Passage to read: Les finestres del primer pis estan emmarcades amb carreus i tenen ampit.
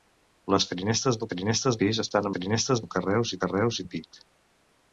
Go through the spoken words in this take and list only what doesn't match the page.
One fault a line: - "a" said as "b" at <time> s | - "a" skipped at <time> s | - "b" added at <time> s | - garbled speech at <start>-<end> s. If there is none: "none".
- "primer" said as "finestres" at 1.3 s
- "emmarcades" said as "finestres" at 2.3 s
- "tenen" said as "carreus" at 3.4 s